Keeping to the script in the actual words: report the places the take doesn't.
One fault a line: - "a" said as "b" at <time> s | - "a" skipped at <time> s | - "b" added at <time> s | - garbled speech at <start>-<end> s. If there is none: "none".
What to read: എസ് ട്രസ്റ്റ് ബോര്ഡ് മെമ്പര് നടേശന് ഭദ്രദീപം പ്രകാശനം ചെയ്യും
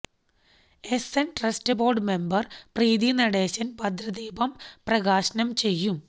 - "എന്" added at 1.2 s
- "പ്രീതി" added at 2.8 s